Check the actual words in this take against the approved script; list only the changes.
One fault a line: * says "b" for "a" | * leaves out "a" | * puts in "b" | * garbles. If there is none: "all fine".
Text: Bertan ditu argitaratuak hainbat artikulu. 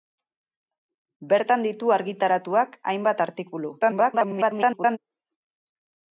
* garbles